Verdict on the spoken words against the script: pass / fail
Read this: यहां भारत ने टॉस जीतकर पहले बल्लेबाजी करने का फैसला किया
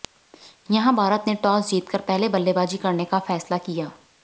pass